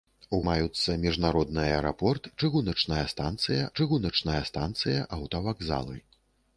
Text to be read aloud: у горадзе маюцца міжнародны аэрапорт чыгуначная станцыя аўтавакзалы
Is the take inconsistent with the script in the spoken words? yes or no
yes